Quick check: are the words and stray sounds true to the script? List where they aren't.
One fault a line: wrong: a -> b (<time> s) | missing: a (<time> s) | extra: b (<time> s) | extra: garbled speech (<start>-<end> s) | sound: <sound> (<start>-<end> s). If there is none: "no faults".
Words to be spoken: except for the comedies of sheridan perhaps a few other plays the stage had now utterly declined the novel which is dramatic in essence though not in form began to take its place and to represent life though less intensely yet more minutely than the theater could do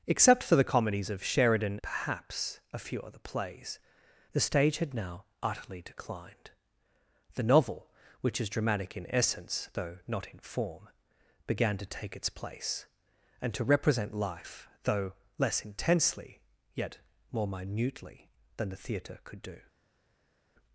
no faults